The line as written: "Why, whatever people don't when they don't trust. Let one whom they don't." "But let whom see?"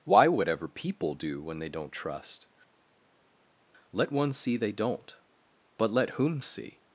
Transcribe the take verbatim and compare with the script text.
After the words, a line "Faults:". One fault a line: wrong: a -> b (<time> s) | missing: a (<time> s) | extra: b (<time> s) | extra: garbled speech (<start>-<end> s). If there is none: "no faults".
"Why, whatever people do when they don't trust. Let one see they don't." "But let whom see?"
Faults:
wrong: don't -> do (1.1 s)
wrong: whom -> see (4.3 s)